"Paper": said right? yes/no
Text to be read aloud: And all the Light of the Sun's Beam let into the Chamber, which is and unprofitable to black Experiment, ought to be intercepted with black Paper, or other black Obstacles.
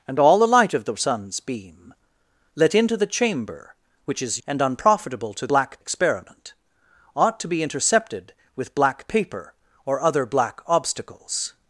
yes